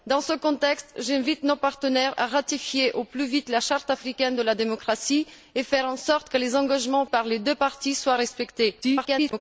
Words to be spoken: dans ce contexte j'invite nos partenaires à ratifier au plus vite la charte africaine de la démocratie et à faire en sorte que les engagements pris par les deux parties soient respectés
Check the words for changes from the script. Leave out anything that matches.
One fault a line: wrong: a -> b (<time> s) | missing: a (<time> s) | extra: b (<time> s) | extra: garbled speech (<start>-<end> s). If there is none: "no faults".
missing: pris (7.0 s)
extra: garbled speech (8.8-9.4 s)